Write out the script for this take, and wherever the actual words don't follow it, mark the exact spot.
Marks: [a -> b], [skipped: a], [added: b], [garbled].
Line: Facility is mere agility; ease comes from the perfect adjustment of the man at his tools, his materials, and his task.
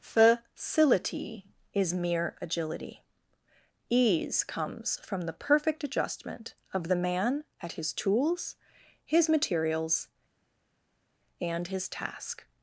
Facility is mere agility; ease comes from the perfect adjustment of the man at his tools, his materials, and his task.